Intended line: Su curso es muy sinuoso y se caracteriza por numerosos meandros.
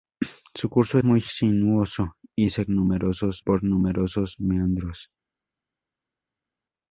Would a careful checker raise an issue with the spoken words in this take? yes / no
yes